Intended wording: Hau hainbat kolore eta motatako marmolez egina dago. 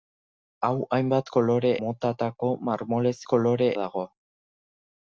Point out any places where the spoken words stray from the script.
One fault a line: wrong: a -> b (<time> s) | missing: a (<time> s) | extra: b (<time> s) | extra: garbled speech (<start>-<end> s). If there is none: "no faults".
missing: eta (1.7 s)
wrong: egina -> kolore (3.3 s)